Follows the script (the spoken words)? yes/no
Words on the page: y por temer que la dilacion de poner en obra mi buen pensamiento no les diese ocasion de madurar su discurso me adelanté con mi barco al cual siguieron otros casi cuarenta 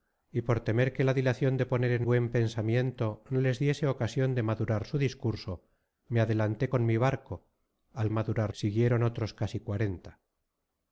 no